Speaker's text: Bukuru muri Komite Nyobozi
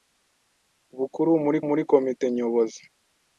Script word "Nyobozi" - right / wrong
right